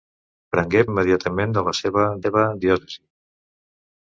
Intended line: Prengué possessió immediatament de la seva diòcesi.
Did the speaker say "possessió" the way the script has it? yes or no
no